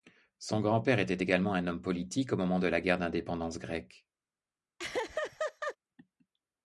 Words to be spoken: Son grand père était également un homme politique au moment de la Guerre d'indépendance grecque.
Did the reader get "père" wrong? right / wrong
right